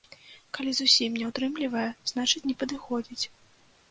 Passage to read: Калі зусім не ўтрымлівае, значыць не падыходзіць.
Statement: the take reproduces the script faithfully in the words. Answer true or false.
true